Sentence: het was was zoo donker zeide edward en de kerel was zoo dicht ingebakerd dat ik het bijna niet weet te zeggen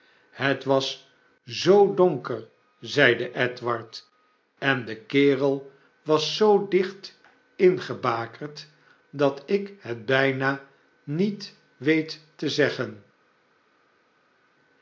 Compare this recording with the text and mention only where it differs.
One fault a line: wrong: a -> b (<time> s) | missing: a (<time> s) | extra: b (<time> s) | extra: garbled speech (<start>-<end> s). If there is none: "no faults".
missing: was (1.1 s)